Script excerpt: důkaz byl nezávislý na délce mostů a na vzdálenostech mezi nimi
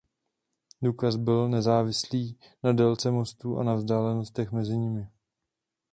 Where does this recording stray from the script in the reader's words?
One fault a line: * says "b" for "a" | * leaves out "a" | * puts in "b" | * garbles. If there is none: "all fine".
all fine